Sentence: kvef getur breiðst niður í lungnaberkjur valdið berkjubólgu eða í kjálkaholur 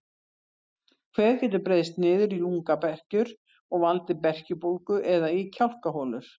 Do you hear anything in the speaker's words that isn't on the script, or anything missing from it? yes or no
yes